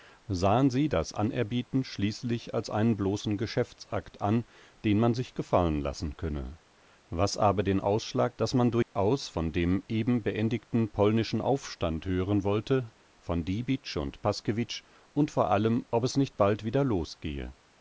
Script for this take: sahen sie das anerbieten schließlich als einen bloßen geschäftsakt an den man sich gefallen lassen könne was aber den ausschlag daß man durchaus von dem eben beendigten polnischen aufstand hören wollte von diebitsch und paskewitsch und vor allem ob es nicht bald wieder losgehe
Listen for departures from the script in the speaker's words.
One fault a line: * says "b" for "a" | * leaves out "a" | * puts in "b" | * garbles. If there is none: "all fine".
all fine